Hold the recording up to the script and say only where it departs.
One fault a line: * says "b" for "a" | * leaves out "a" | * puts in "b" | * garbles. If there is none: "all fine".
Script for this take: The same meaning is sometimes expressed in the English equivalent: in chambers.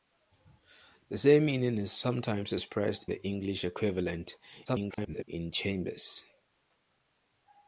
* leaves out "in"
* garbles